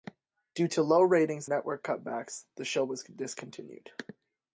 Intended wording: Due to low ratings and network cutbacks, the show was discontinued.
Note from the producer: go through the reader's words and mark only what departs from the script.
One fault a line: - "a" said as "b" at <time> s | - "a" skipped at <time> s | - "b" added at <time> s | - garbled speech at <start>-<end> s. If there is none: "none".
- "and" skipped at 1.5 s